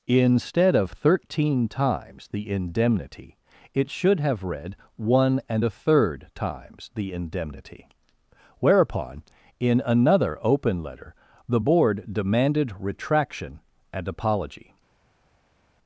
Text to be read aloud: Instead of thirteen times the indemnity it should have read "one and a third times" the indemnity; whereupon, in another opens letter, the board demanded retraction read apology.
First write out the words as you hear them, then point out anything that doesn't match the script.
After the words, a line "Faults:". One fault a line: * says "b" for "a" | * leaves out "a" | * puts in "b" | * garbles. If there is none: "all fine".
Instead of thirteen times the indemnity it should have read "one and a third times" the indemnity; whereupon, in another open letter, the board demanded retraction and apology.
Faults:
* says "open" for "opens"
* says "and" for "read"